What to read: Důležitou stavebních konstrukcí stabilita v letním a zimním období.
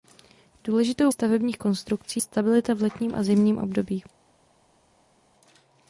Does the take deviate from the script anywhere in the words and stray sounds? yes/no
no